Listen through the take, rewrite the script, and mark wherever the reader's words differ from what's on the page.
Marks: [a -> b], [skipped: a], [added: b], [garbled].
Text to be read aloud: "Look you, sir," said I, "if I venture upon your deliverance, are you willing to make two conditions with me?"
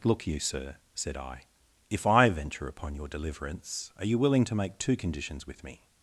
"Look you, sir," said I, "if I venture upon your deliverance, are you willing to make two conditions with me?"